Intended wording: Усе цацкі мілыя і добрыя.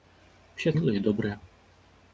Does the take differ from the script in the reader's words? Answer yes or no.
yes